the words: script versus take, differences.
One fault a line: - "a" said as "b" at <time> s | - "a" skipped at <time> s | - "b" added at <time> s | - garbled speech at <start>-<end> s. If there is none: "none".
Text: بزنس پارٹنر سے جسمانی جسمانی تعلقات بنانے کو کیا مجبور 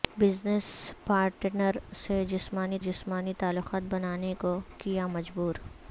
none